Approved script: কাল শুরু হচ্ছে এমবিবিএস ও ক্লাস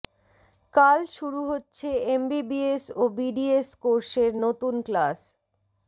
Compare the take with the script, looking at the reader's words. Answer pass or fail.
fail